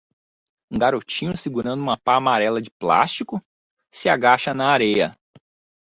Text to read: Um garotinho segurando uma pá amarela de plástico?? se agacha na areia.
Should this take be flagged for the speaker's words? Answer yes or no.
no